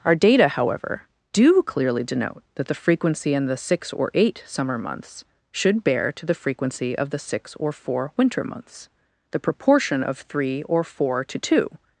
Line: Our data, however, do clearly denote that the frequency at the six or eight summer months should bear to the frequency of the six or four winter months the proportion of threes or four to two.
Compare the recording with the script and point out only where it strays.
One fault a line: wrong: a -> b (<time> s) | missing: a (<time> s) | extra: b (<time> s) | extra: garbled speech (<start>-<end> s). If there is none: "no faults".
wrong: at -> in (3.3 s)
wrong: threes -> three (10.2 s)